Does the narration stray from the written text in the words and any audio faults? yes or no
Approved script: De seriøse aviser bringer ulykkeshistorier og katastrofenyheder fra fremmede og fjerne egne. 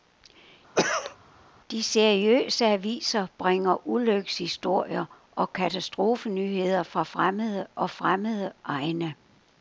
yes